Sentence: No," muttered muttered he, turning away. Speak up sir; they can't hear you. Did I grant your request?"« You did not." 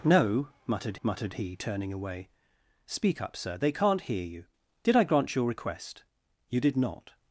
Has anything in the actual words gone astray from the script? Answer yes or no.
no